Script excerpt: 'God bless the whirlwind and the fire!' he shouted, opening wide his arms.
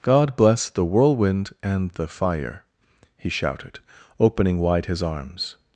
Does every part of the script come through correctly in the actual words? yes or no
yes